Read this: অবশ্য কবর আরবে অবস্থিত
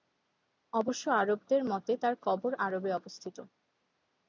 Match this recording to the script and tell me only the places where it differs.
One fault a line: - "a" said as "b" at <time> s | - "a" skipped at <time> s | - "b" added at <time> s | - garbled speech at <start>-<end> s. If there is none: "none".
- "আরবদের মতে তার" added at 1.2 s